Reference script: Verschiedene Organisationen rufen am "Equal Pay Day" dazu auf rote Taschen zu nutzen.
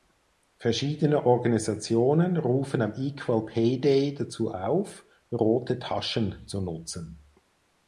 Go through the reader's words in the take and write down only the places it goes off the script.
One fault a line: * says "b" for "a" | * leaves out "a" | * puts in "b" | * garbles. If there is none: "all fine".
all fine